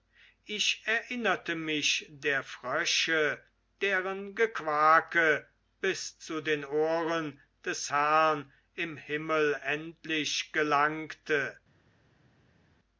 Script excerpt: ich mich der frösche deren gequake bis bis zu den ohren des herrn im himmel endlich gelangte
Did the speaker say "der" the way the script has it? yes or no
yes